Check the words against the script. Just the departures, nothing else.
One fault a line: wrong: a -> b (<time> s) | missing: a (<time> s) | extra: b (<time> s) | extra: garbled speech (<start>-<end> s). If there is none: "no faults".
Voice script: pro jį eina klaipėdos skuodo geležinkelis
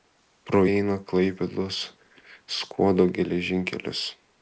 missing: jį (0.6 s)